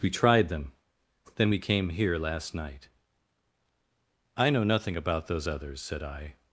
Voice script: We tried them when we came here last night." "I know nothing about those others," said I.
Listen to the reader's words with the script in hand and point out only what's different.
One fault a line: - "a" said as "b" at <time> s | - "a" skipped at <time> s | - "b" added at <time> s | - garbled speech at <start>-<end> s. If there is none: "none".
- "when" said as "then" at 1.4 s